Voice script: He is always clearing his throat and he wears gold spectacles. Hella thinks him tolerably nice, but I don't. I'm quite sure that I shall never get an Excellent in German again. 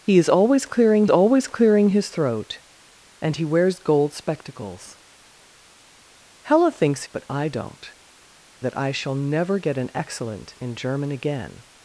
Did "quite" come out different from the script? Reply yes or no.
yes